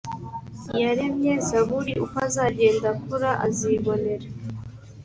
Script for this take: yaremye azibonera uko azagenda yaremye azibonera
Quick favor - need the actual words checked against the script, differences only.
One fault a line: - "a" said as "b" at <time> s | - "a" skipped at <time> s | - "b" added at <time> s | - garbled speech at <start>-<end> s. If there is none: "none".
- "azibonera" said as "zaburi" at 1.5 s
- "yaremye" said as "akura" at 3.0 s